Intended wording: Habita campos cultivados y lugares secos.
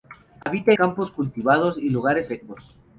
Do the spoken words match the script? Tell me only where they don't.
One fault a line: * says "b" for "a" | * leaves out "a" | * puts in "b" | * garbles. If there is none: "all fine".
all fine